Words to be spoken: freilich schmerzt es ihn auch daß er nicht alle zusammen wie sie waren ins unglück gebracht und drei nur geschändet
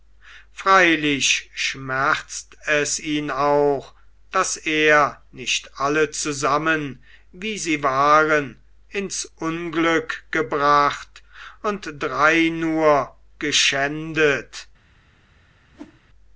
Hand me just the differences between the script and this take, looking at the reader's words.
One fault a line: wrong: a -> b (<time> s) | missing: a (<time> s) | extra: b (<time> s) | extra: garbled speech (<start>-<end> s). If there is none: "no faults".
no faults